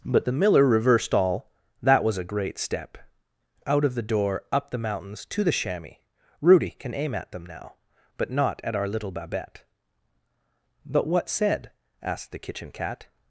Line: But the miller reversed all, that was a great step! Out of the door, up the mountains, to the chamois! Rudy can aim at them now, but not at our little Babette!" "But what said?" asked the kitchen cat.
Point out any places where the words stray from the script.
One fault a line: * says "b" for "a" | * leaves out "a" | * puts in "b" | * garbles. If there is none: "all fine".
all fine